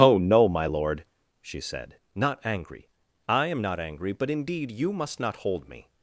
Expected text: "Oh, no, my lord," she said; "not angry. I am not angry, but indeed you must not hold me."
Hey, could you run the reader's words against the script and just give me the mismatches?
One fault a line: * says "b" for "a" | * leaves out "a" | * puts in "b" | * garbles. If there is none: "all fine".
all fine